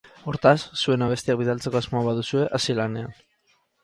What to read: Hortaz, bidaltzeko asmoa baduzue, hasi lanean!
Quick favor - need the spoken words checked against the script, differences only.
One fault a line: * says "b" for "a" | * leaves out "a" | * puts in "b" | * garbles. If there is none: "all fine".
* puts in "zuen abestiak"